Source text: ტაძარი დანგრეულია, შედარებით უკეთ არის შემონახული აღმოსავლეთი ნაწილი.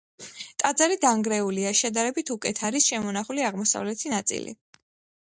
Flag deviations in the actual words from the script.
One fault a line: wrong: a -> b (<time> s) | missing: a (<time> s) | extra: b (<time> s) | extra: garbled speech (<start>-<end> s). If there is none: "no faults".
no faults